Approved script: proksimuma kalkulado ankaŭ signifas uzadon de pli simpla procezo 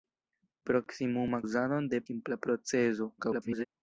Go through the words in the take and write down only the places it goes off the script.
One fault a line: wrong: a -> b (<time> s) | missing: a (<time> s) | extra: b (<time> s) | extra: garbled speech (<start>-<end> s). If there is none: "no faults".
missing: kalkulado ankaŭ signifas (1.4 s)
missing: pli (2.0 s)
extra: garbled speech (3.2-3.6 s)